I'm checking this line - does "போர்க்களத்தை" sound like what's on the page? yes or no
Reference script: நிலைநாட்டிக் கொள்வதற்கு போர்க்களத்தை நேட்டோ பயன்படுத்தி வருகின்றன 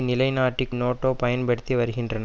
no